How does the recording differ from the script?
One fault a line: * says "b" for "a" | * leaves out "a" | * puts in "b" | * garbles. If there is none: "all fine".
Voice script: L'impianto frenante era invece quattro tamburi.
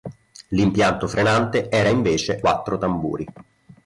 all fine